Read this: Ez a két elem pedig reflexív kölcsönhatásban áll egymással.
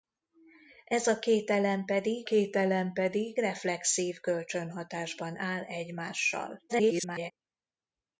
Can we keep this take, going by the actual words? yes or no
no